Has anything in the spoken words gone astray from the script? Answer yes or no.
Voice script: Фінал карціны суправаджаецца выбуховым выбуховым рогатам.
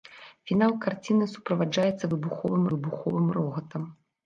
no